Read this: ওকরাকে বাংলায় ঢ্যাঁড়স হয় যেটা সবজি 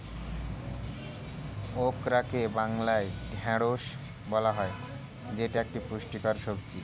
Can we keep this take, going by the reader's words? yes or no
no